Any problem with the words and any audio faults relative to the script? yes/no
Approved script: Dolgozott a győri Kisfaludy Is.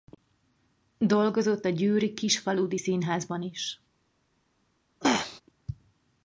yes